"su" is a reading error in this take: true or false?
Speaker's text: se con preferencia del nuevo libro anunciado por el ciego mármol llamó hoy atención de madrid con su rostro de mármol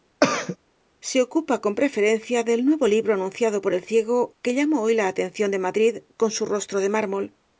false